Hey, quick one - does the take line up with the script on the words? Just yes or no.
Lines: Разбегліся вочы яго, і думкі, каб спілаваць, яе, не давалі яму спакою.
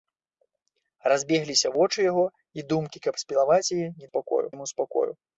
no